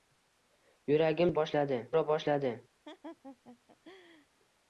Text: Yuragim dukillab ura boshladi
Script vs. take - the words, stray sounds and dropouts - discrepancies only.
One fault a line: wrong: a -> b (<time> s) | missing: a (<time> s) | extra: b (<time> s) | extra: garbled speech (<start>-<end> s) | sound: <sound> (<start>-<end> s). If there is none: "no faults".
wrong: dukillab -> boshladi (1.4 s)
sound: laugh (2.8-4.3 s)